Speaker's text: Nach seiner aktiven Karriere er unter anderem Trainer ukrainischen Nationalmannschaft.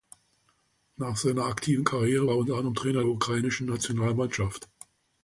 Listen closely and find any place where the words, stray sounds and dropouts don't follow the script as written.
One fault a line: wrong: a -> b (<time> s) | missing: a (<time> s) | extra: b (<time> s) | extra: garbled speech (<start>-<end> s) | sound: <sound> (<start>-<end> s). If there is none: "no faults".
no faults